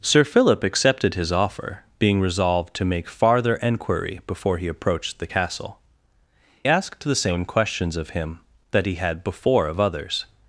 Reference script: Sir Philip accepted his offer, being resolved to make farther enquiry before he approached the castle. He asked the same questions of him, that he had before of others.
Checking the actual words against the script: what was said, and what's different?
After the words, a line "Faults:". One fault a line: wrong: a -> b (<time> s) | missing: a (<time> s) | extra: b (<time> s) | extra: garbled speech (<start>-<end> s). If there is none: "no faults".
Sir Philip accepted his offer, being resolved to make farther enquiry before he approached the castle. Asked the same questions of him, that he had before of others.
Faults:
missing: He (5.8 s)